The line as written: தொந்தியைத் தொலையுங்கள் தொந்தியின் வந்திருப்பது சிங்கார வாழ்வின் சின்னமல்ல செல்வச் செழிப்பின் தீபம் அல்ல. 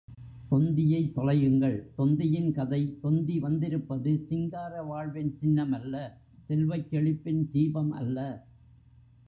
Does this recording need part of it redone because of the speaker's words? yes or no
yes